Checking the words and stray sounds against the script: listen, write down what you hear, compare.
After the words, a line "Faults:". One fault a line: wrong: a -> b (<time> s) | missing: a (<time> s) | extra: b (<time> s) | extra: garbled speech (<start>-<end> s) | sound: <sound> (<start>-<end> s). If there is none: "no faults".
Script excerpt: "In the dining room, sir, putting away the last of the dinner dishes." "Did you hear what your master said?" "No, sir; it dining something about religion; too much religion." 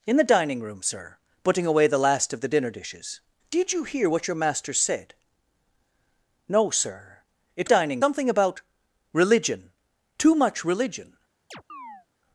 "In the dining room, sir, putting away the last of the dinner dishes." "Did you hear what your master said?" "No, sir; it dining something about religion; too much religion."
Faults:
sound: chirp (11.5-12.1 s)